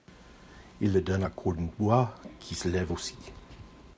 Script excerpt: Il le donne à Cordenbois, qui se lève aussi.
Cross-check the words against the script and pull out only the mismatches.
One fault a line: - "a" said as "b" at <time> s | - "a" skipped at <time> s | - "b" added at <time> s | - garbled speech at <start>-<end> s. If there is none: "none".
none